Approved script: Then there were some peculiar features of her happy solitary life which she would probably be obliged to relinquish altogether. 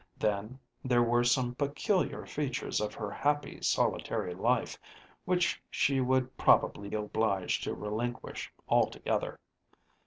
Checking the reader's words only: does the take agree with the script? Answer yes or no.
no